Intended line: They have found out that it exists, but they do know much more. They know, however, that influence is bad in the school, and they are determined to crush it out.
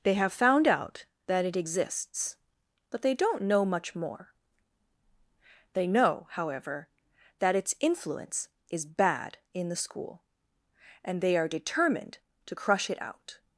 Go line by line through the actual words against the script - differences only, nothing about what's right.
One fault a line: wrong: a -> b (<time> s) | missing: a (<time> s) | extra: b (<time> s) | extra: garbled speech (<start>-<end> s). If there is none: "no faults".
wrong: do -> don't (3.1 s)
extra: its (7.5 s)